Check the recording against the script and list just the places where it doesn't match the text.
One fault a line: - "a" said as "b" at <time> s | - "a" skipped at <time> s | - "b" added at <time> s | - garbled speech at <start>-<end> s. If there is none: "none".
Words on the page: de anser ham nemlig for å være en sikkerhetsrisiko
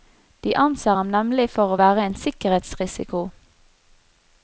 none